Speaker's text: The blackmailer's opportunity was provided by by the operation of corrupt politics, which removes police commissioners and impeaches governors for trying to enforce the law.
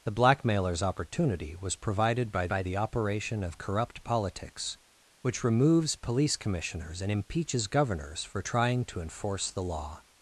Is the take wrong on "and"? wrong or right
right